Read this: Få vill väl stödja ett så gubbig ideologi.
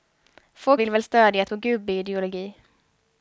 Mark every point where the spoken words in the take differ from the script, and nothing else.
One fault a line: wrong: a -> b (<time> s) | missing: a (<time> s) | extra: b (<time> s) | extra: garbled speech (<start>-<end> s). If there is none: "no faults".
no faults